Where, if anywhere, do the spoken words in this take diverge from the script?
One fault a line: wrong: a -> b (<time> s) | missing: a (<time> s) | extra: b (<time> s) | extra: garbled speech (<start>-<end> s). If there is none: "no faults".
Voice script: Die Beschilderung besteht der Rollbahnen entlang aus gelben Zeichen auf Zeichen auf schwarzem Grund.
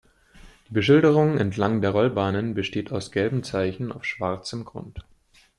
wrong: besteht -> entlang (1.4 s)
wrong: entlang -> besteht (2.5 s)
missing: Zeichen auf (4.0 s)